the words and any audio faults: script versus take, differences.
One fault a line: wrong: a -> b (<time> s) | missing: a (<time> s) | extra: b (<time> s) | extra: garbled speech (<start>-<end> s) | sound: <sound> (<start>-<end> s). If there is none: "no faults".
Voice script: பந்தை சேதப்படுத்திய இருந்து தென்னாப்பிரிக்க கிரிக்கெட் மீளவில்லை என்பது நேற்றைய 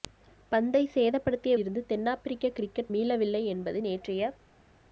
no faults